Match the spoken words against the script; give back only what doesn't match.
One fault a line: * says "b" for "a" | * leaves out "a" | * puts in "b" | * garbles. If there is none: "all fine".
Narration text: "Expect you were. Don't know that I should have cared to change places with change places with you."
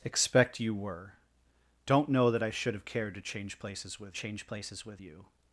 all fine